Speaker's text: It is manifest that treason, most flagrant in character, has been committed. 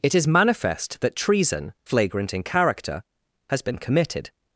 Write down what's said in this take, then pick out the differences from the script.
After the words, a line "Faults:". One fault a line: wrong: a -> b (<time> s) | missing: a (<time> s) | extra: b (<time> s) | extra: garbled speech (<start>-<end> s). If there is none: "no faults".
It is manifest that treason, flagrant in character, has been committed.
Faults:
missing: most (1.7 s)